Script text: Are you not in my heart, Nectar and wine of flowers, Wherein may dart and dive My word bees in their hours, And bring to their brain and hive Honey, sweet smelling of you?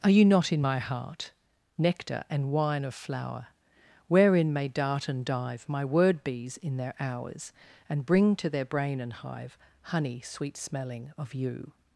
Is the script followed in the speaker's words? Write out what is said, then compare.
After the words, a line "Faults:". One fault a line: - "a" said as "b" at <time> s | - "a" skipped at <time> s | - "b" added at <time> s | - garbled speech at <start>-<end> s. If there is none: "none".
Are you not in my heart, Nectar and wine of flower, Wherein may dart and dive My word bees in their hours, And bring to their brain and hive Honey, sweet smelling of you?
Faults:
- "flowers" said as "flower" at 2.9 s